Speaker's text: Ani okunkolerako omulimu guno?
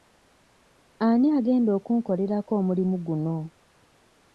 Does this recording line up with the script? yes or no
no